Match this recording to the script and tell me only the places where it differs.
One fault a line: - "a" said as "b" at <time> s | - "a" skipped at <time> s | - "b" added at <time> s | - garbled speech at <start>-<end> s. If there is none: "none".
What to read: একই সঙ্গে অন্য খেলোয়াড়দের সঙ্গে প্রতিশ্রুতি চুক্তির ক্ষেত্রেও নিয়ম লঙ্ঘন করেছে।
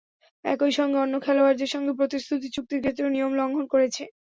none